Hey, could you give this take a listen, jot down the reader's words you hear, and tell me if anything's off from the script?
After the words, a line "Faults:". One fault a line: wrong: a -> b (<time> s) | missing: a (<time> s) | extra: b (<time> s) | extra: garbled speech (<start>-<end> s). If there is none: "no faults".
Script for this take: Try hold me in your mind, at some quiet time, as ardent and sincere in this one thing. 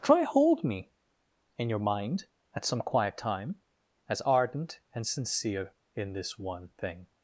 Try hold me in your mind, at some quiet time, as ardent and sincere in this one thing.
Faults:
no faults